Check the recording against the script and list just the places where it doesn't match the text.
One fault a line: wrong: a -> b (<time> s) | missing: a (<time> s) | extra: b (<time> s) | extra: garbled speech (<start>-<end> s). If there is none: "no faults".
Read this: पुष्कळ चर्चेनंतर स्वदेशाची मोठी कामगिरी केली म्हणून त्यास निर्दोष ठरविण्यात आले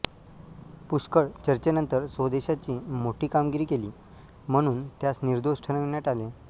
no faults